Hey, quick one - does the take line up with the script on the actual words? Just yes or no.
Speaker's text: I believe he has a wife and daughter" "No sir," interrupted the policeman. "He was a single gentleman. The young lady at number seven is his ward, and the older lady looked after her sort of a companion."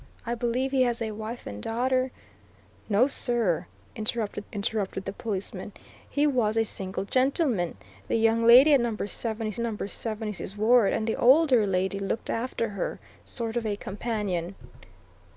no